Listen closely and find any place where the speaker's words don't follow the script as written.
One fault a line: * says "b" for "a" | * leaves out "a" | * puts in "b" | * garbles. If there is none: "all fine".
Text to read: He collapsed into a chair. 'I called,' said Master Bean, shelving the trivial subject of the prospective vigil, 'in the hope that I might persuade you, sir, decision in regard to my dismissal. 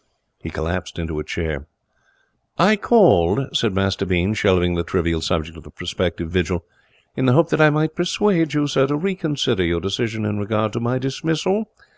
* puts in "to reconsider your"